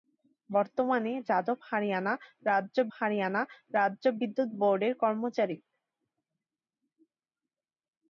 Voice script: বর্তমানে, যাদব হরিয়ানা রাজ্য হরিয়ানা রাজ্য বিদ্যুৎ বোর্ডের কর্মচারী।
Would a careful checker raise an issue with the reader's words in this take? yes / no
no